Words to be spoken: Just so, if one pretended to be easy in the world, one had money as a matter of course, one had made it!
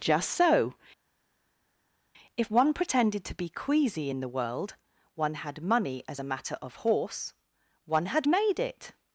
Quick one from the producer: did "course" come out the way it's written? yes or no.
no